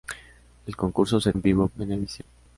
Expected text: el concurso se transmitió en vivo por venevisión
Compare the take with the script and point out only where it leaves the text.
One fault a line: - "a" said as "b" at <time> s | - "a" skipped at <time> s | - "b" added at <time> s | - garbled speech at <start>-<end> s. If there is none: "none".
- "transmitió" skipped at 1.3 s
- "por" skipped at 1.7 s